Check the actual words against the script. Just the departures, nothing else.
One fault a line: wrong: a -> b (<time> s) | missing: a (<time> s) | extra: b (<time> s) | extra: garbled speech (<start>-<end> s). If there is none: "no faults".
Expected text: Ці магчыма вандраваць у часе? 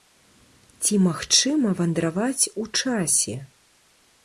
no faults